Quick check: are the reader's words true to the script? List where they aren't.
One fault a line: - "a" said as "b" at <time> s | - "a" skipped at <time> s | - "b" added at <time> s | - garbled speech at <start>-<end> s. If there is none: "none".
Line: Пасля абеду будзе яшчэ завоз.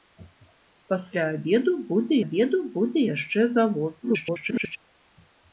- "абеду будзе" added at 2.2 s
- garbled speech at 4.0-4.8 s